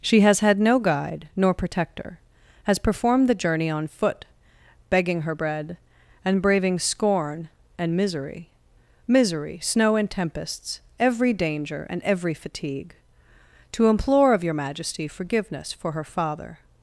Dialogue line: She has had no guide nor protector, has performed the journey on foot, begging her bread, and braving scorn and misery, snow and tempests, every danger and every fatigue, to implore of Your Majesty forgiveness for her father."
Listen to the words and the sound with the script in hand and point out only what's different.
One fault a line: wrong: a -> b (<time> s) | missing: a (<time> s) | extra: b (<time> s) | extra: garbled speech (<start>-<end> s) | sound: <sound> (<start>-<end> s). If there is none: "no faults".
extra: misery (9.1 s)